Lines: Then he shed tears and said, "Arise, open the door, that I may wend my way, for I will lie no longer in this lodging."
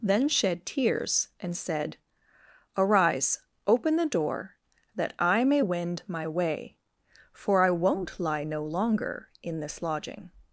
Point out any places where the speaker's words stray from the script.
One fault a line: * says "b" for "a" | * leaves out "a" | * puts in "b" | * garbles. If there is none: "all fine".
* leaves out "he"
* says "won't" for "will"